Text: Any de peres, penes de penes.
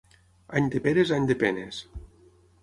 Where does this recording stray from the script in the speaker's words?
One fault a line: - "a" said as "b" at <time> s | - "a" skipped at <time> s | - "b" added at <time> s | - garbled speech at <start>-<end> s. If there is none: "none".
- "penes" said as "any" at 1.2 s